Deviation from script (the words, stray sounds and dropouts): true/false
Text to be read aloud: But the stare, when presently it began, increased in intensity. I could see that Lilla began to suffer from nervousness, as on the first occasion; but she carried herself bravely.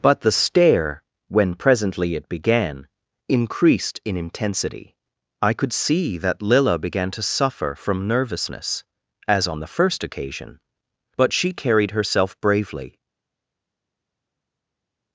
false